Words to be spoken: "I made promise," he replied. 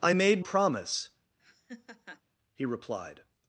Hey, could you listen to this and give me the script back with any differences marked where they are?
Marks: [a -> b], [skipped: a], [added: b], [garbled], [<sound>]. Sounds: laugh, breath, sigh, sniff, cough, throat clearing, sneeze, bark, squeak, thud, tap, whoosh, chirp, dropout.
"I made promise," [laugh] he replied.